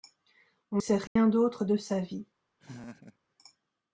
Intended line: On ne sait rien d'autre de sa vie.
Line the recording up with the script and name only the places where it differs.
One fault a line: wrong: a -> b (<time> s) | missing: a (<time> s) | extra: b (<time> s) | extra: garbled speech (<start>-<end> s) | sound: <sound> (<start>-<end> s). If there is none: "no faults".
missing: ne (0.8 s)
sound: dropout (1.1-1.2 s)
sound: laugh (2.6-3.2 s)